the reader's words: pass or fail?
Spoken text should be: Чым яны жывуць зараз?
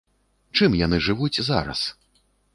pass